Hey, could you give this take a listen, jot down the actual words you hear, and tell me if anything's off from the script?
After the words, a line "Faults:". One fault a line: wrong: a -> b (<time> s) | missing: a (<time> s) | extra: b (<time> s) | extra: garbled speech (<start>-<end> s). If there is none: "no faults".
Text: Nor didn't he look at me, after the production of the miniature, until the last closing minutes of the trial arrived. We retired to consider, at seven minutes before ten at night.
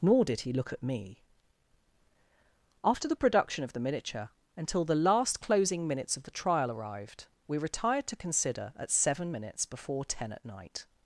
Nor did he look at me, after the production of the miniature, until the last closing minutes of the trial arrived. We retired to consider, at seven minutes before ten at night.
Faults:
wrong: didn't -> did (0.2 s)